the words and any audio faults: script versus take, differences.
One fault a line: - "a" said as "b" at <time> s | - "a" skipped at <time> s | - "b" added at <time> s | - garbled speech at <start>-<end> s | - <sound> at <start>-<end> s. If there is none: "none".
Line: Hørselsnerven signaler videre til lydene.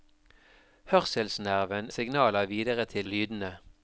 none